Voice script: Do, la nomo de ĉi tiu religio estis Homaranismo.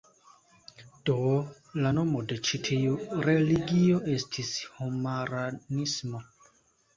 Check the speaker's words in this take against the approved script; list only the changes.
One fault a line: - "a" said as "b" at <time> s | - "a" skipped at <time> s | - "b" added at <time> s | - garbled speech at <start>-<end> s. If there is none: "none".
none